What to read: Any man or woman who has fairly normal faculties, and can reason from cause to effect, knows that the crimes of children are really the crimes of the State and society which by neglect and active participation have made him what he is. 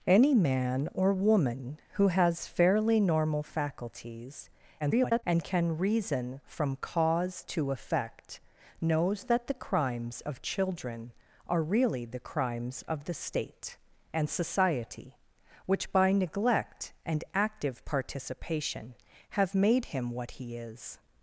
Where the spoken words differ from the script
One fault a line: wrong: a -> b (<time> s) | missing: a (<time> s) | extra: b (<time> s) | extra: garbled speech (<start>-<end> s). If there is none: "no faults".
extra: garbled speech (4.8-5.2 s)